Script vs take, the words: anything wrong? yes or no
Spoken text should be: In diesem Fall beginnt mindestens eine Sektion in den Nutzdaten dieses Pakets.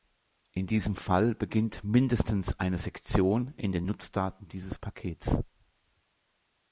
no